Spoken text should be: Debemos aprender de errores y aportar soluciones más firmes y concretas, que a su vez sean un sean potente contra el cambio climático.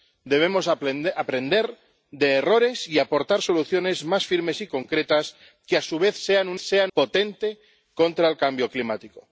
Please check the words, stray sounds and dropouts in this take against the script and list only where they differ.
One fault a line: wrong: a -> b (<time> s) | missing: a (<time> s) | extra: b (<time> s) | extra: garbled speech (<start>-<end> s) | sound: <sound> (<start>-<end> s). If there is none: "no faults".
no faults